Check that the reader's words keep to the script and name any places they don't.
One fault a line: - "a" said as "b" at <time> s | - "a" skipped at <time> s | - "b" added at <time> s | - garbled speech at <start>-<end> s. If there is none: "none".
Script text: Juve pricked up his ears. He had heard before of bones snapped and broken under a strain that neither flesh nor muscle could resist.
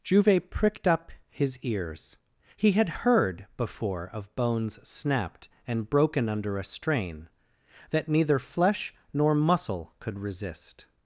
none